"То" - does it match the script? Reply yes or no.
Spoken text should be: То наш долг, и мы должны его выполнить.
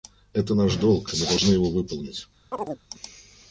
no